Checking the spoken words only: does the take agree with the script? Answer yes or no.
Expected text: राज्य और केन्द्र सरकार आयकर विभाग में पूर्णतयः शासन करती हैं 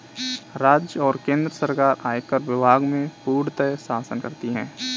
yes